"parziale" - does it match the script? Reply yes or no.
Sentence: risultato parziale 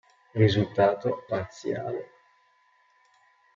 yes